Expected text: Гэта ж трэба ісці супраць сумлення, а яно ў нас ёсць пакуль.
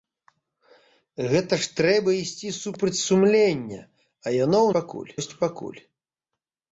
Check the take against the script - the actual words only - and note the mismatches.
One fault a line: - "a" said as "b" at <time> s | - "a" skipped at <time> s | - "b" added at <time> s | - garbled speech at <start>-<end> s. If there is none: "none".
- "нас" said as "пакуль" at 4.8 s